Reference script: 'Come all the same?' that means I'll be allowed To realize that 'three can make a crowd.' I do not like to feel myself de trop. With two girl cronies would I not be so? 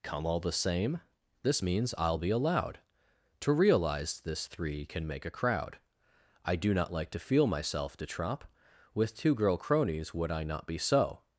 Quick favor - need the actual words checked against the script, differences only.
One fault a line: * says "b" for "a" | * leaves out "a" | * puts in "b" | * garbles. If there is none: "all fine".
* says "this" for "that"
* says "this" for "that"